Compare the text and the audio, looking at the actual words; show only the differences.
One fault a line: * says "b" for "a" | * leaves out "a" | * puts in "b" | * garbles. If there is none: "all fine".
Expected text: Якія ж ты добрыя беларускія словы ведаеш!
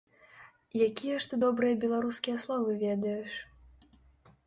all fine